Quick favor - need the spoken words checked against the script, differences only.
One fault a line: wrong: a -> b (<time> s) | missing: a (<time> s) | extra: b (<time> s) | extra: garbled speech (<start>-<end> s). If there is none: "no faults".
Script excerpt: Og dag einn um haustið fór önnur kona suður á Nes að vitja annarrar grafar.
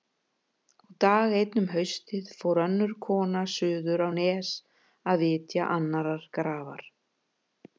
no faults